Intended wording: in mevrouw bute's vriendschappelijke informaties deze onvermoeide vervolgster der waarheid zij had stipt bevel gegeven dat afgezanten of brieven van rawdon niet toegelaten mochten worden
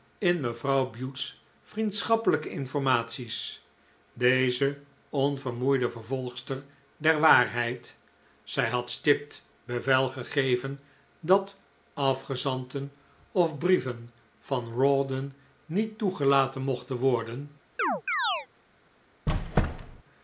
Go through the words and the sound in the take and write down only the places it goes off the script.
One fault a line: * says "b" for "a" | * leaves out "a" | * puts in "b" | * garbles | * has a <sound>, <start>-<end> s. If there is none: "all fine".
* has a chirp, 17.8-18.5 s
* has a squeak, 19.3-20.0 s